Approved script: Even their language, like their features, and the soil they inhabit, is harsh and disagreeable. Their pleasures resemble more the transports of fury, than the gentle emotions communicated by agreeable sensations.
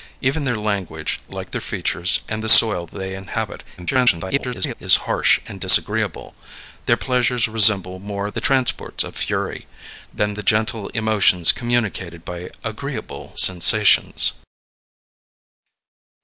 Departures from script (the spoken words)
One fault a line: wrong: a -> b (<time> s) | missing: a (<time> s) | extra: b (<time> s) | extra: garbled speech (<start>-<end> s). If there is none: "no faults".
extra: garbled speech (3.8-4.7 s)